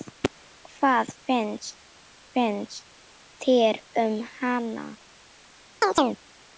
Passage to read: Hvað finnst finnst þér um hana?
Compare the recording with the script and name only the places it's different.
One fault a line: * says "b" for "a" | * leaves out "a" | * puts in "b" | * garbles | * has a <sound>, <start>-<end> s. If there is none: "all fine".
* has a chirp, 5.8-6.2 s